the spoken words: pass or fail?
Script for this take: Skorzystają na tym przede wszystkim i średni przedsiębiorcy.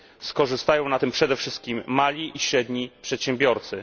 fail